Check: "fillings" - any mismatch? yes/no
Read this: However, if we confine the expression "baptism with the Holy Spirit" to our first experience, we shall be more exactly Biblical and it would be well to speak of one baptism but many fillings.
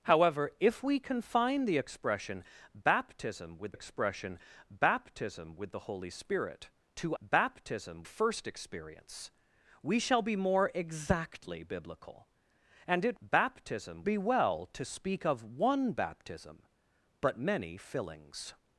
no